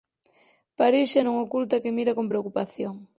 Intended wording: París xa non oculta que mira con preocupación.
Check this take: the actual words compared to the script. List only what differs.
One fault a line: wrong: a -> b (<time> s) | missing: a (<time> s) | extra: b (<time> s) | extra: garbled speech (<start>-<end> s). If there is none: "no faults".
no faults